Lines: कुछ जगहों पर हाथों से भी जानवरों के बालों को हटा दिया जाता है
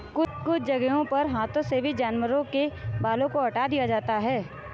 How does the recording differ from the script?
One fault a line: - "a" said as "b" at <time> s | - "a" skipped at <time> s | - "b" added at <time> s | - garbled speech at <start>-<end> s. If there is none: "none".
none